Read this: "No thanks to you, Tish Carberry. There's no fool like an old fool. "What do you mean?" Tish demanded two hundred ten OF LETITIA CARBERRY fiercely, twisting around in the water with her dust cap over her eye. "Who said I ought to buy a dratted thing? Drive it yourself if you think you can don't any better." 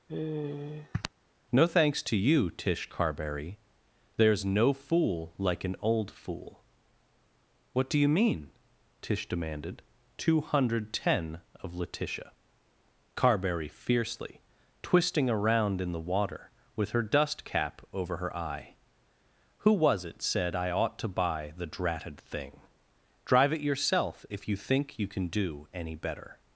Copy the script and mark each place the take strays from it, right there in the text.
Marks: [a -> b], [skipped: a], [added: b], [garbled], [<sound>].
[sigh] "No thanks to you, Tish Carberry. There's no fool like an old fool. "What do you mean?" Tish demanded two hundred ten OF LETITIA CARBERRY fiercely, twisting around in the water with her dust cap over her eye. "Who [added: was it] said I ought to buy [a -> the] dratted thing? Drive it yourself if you think you can [don't -> do] any better."